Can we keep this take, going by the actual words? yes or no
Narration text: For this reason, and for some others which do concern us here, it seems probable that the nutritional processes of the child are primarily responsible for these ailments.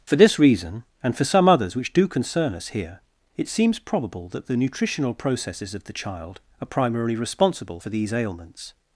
yes